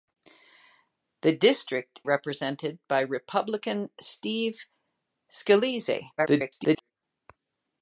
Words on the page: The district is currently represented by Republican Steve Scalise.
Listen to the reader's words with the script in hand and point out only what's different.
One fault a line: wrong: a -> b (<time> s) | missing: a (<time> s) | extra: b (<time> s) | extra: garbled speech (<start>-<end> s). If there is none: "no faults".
missing: is currently (2.0 s)
extra: garbled speech (6.2-6.9 s)